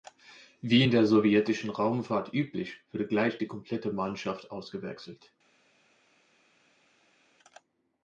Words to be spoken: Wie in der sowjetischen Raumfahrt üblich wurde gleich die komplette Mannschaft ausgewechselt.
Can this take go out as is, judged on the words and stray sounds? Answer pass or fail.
pass